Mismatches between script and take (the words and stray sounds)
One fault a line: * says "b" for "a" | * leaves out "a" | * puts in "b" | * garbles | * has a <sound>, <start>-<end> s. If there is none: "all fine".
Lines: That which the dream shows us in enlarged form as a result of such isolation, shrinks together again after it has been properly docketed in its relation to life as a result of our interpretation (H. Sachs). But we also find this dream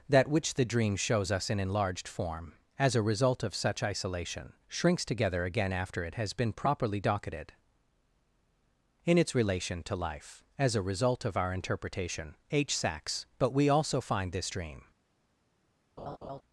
* has a laugh, 16.0-16.4 s